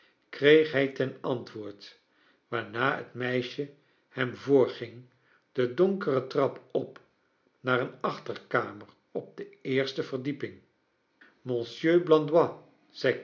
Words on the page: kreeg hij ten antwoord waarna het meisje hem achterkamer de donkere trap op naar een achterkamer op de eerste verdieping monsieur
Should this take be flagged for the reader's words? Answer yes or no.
yes